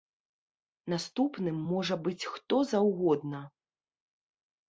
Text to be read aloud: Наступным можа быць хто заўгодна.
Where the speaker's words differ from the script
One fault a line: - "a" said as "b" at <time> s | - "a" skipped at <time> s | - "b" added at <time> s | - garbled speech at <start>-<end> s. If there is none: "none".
none